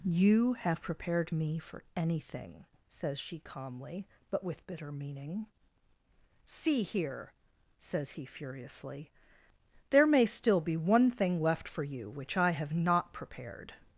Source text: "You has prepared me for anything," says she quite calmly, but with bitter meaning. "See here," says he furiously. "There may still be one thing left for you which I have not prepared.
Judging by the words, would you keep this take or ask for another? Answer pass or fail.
fail